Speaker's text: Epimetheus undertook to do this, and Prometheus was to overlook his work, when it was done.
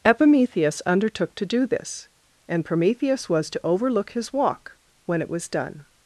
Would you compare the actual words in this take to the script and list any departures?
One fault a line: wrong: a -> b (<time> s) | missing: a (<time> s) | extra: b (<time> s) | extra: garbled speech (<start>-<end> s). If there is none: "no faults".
wrong: work -> walk (4.3 s)